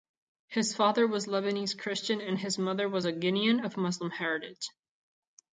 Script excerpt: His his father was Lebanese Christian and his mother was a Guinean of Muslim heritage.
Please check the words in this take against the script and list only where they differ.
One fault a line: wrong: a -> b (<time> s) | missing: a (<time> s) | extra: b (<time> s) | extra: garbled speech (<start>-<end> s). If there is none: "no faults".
missing: his (0.8 s)